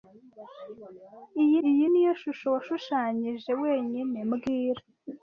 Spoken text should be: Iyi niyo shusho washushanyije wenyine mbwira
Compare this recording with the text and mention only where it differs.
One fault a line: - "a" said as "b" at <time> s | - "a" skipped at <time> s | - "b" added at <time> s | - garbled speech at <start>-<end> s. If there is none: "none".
- "iyi" added at 1.7 s